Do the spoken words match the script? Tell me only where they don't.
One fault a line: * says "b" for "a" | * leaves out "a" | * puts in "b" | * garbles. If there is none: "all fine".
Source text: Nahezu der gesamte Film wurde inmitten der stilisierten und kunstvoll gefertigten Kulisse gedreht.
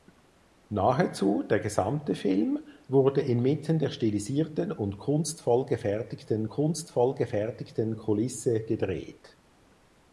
* puts in "kunstvoll gefertigten"